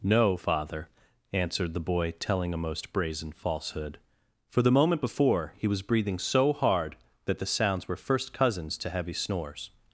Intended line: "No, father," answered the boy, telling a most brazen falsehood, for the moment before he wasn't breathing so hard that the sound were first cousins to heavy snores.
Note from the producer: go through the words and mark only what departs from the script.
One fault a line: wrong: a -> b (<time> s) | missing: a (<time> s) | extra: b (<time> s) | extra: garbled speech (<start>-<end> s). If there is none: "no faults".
wrong: wasn't -> was (5.7 s)
wrong: sound -> sounds (7.5 s)